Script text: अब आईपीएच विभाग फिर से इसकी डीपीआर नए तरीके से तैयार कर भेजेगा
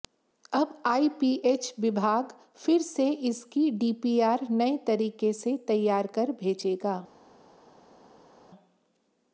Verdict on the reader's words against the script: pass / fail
pass